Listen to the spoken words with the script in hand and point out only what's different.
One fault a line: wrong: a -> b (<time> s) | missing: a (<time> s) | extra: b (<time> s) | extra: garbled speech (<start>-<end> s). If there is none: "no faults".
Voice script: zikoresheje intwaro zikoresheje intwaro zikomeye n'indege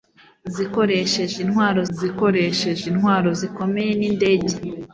no faults